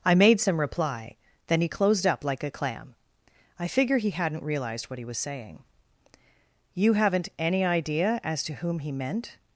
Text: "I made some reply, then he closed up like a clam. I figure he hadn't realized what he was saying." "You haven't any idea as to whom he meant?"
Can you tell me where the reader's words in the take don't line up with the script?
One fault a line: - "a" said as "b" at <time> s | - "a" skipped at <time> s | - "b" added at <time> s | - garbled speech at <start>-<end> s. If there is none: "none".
none